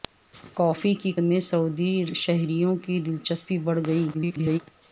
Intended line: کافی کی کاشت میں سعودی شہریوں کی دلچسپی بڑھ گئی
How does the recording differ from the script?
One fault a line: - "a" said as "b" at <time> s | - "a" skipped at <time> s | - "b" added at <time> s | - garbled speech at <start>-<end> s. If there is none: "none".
- "کاشت" skipped at 1.1 s
- garbled speech at 4.1-4.6 s